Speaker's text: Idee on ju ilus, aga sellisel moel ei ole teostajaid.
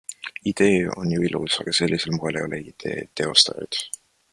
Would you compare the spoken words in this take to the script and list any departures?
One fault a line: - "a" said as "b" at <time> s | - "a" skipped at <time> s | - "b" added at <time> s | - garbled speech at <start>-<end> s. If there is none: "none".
- "idee" added at 2.6 s